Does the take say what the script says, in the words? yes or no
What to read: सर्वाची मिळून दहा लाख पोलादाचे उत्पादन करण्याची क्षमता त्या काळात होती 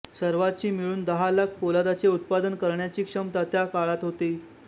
yes